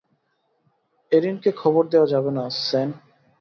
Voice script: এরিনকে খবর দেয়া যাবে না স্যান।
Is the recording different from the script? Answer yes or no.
no